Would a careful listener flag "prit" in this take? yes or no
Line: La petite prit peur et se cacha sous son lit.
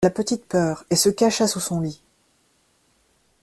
yes